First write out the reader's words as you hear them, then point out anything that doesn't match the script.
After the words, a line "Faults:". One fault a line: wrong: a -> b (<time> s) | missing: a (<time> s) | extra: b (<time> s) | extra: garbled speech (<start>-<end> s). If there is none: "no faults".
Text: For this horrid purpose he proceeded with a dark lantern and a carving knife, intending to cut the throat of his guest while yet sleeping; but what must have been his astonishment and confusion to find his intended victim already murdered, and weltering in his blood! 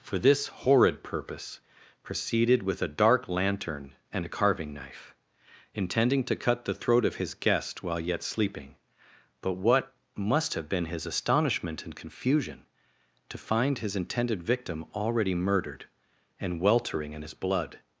For this horrid purpose proceeded with a dark lantern and a carving knife, intending to cut the throat of his guest while yet sleeping; but what must have been his astonishment and confusion to find his intended victim already murdered, and weltering in his blood!
Faults:
missing: he (1.6 s)